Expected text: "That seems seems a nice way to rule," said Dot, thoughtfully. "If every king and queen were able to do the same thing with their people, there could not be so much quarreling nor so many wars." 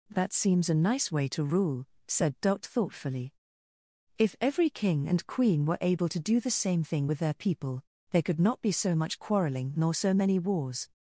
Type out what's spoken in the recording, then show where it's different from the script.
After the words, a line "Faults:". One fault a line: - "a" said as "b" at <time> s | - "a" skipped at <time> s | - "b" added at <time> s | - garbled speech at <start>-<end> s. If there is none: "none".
"That seems a nice way to rule," said Dot, thoughtfully. "If every king and queen were able to do the same thing with their people, there could not be so much quarreling nor so many wars."
Faults:
- "seems" skipped at 0.7 s